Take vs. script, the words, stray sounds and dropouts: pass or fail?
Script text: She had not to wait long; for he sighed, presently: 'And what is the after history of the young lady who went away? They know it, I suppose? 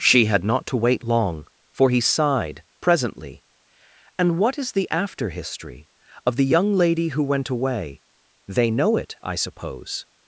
pass